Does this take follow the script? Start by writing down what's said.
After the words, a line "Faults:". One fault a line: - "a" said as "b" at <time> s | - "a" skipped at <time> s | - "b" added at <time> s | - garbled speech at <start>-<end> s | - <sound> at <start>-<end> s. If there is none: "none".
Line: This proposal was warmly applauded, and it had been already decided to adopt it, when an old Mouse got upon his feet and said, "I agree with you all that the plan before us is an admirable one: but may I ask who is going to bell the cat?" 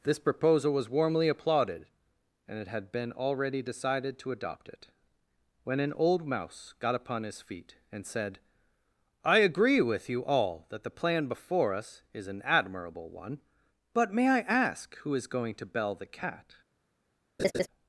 This proposal was warmly applauded, and it had been already decided to adopt it, when an old Mouse got upon his feet and said, "I agree with you all that the plan before us is an admirable one: but may I ask who is going to bell the cat?"
Faults:
- laugh at 17.4-17.7 s